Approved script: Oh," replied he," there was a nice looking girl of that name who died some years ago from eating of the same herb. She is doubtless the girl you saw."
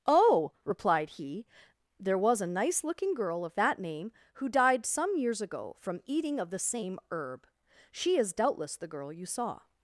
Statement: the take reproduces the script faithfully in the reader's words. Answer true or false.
true